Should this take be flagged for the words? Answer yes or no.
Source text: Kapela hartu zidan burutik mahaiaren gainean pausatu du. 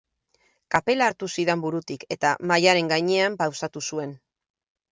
yes